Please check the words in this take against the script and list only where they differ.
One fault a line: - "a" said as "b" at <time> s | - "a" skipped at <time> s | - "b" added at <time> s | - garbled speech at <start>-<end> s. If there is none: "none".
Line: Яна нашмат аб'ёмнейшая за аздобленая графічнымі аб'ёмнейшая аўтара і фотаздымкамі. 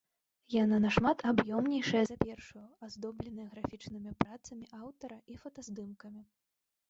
- "першую" added at 2.2 s
- "аб'ёмнейшая" said as "працамі" at 4.3 s